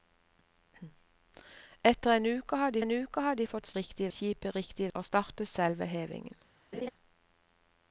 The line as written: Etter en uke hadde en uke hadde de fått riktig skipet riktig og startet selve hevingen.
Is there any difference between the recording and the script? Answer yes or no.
no